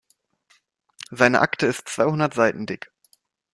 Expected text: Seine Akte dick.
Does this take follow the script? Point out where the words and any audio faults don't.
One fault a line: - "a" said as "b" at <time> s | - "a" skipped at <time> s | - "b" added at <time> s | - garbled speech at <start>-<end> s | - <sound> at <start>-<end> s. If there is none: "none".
- "ist zweihundert Seiten" added at 1.7 s